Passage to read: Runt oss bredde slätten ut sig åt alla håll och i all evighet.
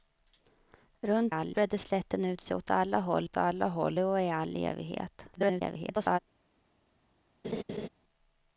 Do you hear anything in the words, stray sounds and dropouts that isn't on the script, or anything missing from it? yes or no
yes